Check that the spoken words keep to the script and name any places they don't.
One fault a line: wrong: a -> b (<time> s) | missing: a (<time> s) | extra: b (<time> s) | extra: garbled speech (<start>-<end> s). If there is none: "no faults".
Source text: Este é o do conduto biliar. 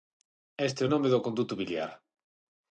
extra: nome (0.9 s)